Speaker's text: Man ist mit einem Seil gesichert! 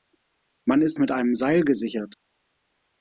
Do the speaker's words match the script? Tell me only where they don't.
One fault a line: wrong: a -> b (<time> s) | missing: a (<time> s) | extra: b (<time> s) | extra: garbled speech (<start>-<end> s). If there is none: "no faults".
no faults